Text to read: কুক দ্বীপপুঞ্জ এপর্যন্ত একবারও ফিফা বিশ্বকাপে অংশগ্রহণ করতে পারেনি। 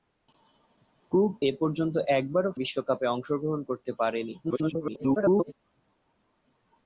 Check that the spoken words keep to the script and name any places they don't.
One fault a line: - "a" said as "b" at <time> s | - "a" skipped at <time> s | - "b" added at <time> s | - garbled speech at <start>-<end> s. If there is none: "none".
- "দ্বীপপুঞ্জ" skipped at 1.3 s
- "ফিফা" skipped at 2.5 s
- garbled speech at 4.4-5.5 s